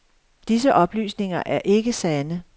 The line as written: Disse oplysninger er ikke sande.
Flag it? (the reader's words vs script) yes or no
no